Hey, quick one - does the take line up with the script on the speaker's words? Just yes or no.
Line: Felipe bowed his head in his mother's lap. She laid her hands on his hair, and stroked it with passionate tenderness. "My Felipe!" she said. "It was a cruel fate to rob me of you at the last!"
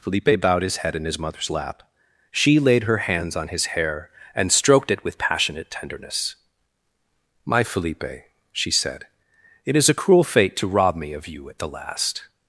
no